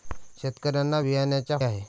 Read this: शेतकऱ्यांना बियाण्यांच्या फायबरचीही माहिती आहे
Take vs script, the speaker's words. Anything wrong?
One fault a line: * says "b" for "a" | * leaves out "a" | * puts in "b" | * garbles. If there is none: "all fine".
* leaves out "फायबरचीही माहिती"